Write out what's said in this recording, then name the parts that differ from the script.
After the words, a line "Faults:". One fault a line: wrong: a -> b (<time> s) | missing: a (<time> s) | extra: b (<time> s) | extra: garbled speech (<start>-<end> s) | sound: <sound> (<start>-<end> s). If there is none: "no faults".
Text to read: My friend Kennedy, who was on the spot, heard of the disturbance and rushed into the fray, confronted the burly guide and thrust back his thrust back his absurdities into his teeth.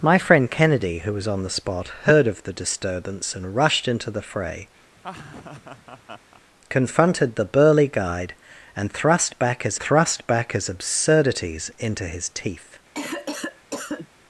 My friend Kennedy, who was on the spot, heard of the disturbance and rushed into the fray, confronted the burly guide and thrust back his thrust back his absurdities into his teeth.
Faults:
sound: laugh (5.0-6.4 s)
sound: cough (12.9-14.1 s)